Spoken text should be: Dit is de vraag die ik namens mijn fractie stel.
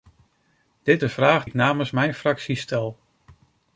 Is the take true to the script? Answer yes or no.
no